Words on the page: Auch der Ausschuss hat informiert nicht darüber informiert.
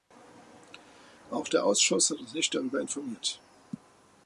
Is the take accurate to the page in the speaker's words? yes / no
no